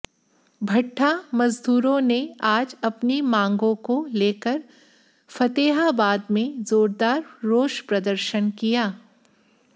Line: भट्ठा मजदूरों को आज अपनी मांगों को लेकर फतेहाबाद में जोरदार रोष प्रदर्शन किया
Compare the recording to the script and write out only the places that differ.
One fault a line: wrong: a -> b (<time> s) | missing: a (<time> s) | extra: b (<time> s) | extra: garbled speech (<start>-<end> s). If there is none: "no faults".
wrong: को -> ने (2.0 s)